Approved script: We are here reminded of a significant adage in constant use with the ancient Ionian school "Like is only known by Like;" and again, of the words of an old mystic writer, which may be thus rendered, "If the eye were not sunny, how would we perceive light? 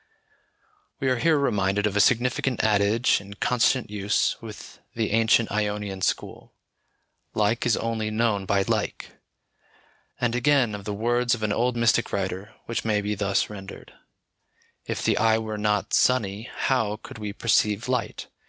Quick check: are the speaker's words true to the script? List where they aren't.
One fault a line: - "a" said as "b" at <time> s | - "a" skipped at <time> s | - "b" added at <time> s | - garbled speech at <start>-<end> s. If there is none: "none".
- "would" said as "could" at 17.0 s